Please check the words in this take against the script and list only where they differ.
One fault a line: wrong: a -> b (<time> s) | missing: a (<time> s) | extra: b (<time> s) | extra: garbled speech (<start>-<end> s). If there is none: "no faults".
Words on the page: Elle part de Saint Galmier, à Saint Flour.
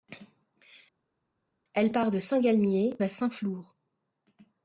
no faults